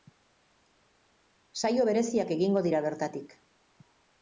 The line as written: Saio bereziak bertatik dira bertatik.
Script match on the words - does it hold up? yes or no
no